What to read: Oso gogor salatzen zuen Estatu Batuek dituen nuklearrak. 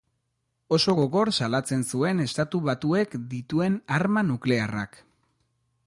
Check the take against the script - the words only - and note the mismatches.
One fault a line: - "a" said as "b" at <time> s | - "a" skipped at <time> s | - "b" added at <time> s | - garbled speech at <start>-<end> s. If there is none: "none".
- "arma" added at 4.0 s